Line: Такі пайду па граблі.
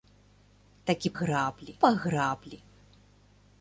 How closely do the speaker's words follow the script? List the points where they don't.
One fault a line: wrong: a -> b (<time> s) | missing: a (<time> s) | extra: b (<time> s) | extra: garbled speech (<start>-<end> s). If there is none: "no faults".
wrong: пайду -> граблі (1.2 s)